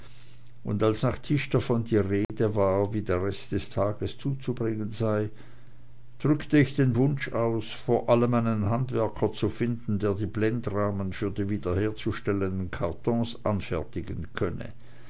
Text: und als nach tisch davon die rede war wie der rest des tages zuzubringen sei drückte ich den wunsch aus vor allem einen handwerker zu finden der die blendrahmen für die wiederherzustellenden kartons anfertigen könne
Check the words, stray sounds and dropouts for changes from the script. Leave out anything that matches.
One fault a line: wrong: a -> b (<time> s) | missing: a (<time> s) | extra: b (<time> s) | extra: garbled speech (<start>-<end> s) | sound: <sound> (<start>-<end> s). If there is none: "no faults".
sound: dropout (2.2-2.3 s)